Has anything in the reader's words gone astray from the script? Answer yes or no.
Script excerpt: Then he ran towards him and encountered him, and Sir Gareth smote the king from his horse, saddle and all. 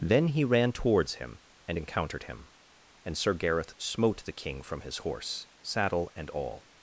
no